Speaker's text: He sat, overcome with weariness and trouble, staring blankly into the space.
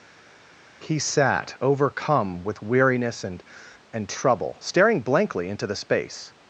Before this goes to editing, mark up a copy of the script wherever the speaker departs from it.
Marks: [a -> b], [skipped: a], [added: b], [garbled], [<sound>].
He sat, overcome with weariness and [added: and] trouble, staring blankly into the space.